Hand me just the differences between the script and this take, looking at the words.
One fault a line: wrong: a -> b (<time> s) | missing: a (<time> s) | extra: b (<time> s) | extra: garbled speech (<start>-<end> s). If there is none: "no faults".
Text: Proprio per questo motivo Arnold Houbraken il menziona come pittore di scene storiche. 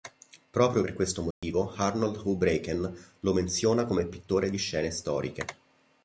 wrong: il -> lo (3.2 s)